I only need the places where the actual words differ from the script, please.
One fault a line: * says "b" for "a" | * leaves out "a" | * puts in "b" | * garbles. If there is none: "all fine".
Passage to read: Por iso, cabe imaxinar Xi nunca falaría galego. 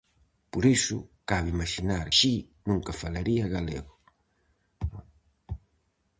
all fine